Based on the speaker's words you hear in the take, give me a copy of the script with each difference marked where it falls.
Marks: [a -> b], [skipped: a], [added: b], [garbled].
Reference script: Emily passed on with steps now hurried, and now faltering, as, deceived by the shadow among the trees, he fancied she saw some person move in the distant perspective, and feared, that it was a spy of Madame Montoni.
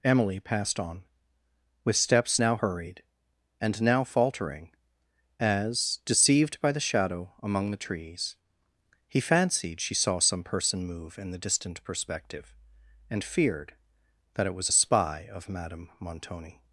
Emily passed on with steps now hurried, and now faltering, as, deceived by the shadow among the trees, he fancied she saw some person move in the distant perspective, and feared, that it was a spy of Madame Montoni.